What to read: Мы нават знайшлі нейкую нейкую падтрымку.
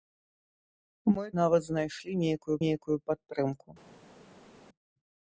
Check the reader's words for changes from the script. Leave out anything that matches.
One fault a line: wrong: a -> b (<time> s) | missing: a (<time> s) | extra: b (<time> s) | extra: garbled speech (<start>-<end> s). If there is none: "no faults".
no faults